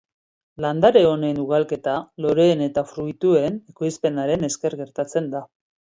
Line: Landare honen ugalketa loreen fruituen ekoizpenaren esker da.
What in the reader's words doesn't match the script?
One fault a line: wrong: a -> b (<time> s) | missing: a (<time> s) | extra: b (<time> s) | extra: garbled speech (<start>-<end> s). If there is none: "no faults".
extra: eta (2.7 s)
extra: gertatzen (4.8 s)